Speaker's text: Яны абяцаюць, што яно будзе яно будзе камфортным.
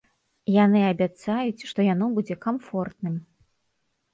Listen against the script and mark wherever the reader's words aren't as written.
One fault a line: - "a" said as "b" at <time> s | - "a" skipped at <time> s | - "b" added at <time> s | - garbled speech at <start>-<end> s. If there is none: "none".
- "яно будзе" skipped at 2.3 s